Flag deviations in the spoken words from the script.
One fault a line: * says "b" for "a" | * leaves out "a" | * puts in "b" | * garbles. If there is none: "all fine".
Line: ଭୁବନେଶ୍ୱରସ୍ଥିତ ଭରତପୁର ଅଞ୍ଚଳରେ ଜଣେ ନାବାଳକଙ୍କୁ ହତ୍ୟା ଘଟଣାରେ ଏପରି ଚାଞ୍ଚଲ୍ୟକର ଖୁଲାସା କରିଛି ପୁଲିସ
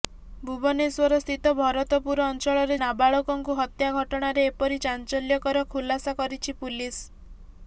* leaves out "ଜଣେ"